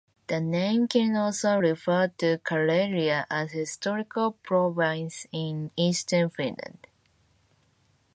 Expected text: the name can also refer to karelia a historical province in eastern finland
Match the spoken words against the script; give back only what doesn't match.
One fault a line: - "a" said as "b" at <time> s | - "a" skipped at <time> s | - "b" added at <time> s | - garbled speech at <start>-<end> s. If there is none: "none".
none